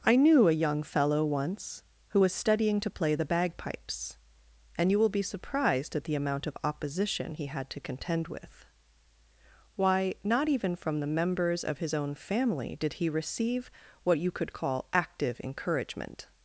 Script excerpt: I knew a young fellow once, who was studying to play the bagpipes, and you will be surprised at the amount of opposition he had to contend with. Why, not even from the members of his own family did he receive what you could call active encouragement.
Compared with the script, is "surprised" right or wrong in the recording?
right